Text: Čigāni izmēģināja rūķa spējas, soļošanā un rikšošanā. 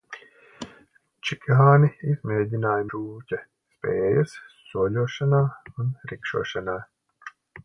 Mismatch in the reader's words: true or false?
false